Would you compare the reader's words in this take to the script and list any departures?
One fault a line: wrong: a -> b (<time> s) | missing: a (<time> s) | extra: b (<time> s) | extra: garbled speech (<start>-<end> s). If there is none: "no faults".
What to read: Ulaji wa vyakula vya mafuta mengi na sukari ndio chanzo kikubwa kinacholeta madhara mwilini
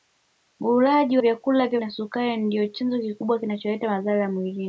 missing: wa (1.2 s)
missing: mafuta mengi (1.8 s)